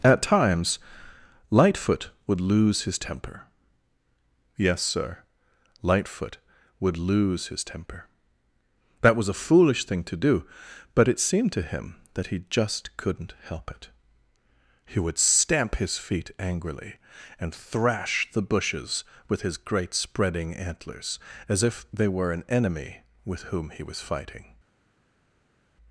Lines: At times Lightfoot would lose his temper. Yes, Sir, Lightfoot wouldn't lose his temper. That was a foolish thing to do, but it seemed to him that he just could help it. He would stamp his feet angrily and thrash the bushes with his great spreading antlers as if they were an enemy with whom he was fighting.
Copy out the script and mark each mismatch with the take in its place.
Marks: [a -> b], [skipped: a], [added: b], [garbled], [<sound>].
At times Lightfoot would lose his temper. Yes, Sir, Lightfoot [wouldn't -> would] lose his temper. That was a foolish thing to do, but it seemed to him that he just [could -> couldn't] help it. He would stamp his feet angrily and thrash the bushes with his great spreading antlers as if they were an enemy with whom he was fighting.